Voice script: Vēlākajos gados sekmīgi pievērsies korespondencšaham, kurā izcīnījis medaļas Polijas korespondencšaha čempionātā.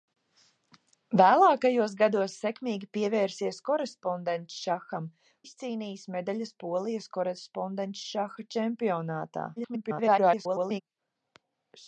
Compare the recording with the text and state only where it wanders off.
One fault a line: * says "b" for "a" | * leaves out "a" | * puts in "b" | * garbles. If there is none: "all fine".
* leaves out "kurā"
* garbles